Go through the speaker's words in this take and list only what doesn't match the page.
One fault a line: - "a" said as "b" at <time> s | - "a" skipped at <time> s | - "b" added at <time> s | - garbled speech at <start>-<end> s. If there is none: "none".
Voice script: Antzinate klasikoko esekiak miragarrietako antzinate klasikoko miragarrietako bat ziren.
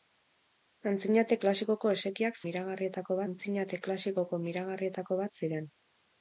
none